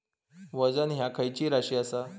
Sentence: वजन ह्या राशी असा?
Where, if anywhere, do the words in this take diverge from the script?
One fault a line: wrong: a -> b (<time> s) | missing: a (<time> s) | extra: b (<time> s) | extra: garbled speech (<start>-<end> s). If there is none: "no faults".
extra: खैची (1.1 s)